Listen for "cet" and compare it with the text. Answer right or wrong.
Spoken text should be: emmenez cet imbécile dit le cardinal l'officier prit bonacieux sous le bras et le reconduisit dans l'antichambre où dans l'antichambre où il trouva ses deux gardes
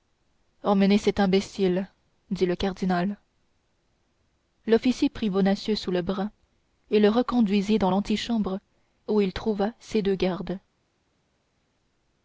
right